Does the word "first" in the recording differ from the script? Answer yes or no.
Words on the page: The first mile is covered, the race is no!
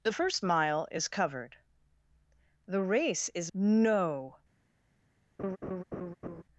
no